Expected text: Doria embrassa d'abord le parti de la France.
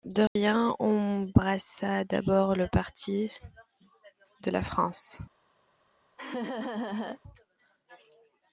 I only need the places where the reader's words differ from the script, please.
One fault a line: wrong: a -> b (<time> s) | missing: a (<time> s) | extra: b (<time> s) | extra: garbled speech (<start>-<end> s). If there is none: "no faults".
no faults